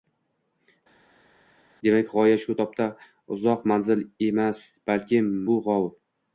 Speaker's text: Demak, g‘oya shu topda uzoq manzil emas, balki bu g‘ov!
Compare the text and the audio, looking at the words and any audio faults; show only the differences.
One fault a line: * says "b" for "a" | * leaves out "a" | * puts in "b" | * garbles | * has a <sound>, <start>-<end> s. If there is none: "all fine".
all fine